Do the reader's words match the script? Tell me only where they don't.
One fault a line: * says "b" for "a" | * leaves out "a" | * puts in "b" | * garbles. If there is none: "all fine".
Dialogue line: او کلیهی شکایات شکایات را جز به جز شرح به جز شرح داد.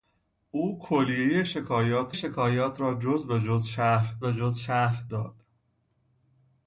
all fine